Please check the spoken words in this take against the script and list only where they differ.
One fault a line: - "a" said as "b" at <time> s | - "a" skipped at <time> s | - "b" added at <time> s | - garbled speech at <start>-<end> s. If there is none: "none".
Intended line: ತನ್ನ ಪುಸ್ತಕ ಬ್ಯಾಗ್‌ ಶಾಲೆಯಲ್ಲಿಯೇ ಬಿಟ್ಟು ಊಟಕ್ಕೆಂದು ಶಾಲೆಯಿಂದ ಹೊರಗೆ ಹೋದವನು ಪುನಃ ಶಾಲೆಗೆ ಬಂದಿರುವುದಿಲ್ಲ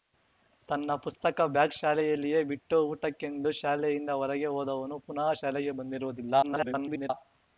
- garbled speech at 6.4-7.1 s